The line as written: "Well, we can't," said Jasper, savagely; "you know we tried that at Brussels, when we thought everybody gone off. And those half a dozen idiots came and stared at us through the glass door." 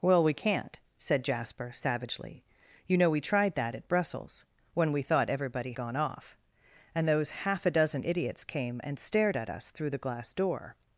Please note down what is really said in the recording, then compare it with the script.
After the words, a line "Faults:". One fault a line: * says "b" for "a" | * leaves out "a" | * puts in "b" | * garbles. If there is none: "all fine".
"Well, we can't," said Jasper, savagely; "you know we tried that at Brussels, when we thought everybody gone off. And those half a dozen idiots came and stared at us through the glass door."
Faults:
all fine